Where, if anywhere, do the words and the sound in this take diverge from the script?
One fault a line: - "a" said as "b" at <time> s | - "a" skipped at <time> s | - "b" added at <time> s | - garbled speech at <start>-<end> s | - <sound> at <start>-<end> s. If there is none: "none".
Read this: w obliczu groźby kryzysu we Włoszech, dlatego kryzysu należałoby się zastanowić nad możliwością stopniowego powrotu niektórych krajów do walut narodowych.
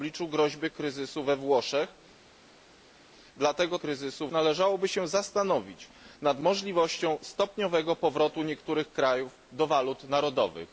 none